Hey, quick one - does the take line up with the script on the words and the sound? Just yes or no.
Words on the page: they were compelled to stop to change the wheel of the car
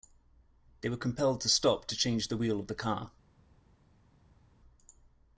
yes